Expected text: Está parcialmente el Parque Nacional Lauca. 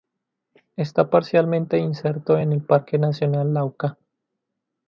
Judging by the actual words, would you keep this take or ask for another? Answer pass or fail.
fail